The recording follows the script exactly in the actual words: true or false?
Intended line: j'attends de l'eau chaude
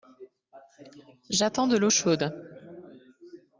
true